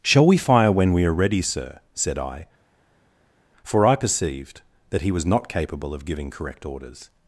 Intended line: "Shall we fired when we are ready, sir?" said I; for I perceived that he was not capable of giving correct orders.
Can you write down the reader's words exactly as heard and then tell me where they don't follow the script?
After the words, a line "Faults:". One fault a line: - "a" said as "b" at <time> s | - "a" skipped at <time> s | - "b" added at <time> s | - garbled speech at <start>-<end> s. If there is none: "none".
"Shall we fire when we are ready, sir?" said I; for I perceived that he was not capable of giving correct orders.
Faults:
- "fired" said as "fire" at 0.4 s